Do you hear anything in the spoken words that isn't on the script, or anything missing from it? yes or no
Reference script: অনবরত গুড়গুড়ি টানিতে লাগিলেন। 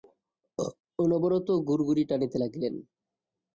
no